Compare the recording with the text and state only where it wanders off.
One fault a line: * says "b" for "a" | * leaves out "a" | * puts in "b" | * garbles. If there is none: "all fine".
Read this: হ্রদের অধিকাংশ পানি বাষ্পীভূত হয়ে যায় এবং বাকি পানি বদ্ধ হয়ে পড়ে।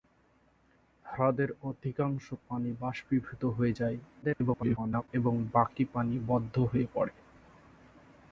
* garbles